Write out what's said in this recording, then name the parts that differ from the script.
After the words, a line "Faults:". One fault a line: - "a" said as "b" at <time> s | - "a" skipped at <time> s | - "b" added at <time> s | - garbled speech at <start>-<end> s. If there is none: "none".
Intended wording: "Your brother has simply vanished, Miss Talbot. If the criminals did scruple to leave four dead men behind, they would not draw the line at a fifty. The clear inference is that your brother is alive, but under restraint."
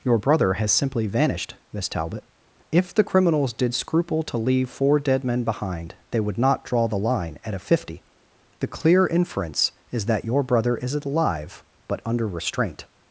"Your brother has simply vanished, Miss Talbot. If the criminals did scruple to leave four dead men behind, they would not draw the line at a fifty. The clear inference is that your brother is alive, but under restraint."
Faults:
none